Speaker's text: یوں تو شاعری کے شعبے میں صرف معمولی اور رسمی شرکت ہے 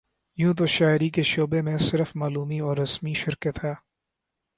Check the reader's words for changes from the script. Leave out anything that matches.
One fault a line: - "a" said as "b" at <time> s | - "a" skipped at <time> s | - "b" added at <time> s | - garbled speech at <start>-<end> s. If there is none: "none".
none